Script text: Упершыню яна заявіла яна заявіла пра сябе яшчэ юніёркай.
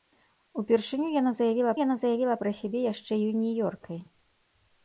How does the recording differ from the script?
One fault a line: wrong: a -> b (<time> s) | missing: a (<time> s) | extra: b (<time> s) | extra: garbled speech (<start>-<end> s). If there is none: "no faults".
no faults